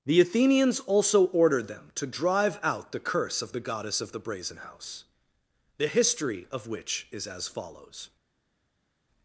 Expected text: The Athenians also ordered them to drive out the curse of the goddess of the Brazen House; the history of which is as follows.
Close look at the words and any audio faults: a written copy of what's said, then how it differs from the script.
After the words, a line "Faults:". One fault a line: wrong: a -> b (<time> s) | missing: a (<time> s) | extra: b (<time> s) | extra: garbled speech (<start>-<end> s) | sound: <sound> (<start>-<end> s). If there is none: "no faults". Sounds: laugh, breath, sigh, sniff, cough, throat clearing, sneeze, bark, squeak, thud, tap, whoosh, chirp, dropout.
The Athenians also ordered them to drive out the curse of the goddess of the Brazen House; the history of which is as follows.
Faults:
no faults